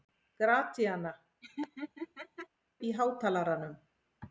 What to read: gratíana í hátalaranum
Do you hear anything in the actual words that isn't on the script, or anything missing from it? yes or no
no